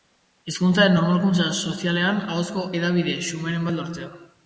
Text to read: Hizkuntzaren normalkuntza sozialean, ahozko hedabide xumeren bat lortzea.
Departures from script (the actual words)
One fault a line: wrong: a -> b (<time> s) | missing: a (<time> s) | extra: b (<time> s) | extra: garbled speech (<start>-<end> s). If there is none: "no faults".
no faults